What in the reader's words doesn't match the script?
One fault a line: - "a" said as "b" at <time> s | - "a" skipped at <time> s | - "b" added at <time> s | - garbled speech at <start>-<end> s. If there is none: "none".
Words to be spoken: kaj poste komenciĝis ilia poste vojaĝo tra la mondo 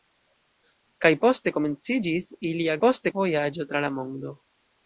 none